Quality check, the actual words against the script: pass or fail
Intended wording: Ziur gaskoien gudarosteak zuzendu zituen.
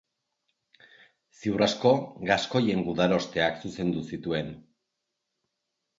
fail